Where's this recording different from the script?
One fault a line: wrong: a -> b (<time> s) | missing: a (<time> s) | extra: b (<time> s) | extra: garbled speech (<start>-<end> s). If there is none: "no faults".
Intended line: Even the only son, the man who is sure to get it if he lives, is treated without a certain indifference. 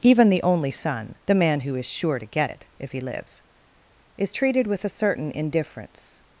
wrong: without -> with (4.7 s)